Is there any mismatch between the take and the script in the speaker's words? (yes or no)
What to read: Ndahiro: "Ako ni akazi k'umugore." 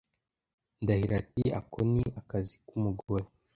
yes